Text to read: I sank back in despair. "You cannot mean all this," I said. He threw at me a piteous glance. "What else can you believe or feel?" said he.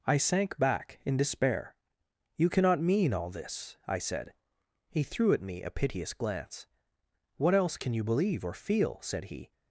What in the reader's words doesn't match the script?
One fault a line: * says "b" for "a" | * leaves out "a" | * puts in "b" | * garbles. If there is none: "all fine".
all fine